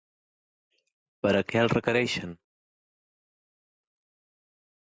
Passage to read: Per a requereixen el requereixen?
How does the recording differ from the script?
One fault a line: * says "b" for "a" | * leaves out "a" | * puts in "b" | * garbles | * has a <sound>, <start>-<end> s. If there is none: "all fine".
* says "què" for "requereixen"